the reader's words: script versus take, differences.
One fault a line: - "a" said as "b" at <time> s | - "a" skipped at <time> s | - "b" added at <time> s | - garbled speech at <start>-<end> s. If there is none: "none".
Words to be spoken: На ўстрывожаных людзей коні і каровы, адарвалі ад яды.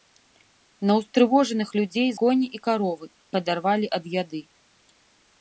none